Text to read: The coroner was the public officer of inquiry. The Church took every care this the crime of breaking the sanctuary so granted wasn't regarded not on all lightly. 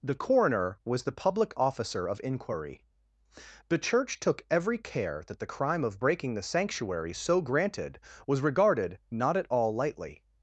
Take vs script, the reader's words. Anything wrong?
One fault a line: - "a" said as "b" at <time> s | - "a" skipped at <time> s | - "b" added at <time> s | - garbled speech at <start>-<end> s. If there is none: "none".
- "this" said as "that" at 5.3 s
- "wasn't" said as "was" at 8.3 s
- "on" said as "at" at 9.3 s